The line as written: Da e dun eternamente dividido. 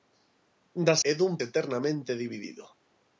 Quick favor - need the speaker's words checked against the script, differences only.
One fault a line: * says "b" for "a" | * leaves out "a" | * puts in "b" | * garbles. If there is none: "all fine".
all fine